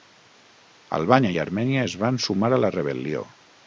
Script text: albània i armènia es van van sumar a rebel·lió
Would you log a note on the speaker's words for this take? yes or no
yes